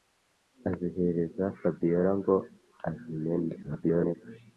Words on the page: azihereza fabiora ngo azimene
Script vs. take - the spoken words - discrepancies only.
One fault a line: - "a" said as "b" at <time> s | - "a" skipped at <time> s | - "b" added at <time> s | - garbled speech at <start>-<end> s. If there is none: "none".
- garbled speech at 3.6-4.2 s